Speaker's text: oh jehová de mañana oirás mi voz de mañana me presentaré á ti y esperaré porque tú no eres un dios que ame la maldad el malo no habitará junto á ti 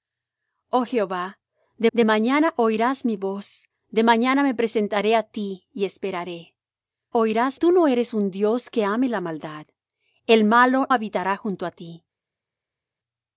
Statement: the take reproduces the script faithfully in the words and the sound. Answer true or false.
false